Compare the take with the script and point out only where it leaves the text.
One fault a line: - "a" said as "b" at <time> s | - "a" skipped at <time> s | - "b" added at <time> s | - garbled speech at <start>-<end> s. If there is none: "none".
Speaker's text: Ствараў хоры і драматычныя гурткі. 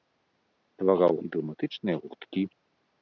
- "хоры" skipped at 1.1 s